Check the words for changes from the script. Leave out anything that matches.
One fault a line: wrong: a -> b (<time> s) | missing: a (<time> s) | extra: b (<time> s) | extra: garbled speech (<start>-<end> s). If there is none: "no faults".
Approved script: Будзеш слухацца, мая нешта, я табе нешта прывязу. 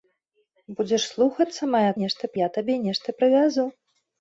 no faults